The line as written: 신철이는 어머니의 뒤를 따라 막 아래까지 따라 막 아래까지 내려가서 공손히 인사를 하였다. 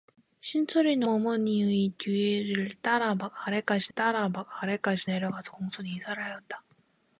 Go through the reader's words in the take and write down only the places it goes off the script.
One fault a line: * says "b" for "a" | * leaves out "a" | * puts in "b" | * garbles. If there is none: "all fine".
all fine